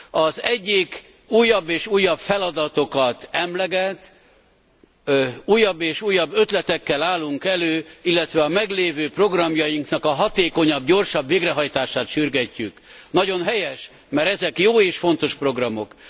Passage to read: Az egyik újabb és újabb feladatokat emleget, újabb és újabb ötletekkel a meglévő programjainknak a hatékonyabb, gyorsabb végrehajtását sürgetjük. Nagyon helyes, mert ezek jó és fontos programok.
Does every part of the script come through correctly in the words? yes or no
no